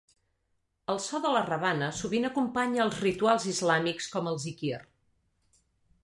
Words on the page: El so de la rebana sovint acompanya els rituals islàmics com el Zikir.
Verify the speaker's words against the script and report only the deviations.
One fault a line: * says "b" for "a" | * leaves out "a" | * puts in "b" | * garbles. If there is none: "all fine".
all fine